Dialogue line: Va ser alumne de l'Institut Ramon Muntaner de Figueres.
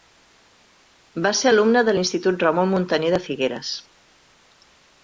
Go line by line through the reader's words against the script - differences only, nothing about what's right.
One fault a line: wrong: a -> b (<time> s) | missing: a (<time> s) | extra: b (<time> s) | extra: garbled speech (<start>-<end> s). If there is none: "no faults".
no faults